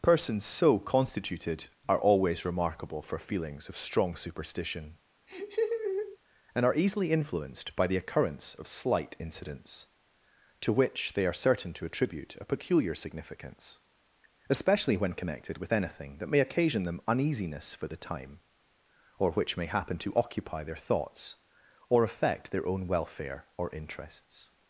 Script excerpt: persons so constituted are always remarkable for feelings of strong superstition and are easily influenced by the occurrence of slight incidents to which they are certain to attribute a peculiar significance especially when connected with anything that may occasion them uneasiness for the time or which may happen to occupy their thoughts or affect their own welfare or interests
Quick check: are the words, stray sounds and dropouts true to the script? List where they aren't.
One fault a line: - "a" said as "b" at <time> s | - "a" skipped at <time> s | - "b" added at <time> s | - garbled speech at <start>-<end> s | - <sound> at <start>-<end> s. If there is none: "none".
- laugh at 5.3-6.2 s